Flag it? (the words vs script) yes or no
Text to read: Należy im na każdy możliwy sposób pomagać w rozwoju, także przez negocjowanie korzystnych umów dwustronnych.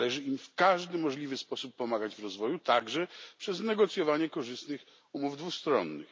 yes